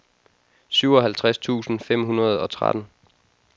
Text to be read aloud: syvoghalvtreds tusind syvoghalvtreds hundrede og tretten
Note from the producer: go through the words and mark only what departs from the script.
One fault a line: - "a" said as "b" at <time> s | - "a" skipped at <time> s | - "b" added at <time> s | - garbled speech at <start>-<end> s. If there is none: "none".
- "syvoghalvtreds" said as "fem" at 1.8 s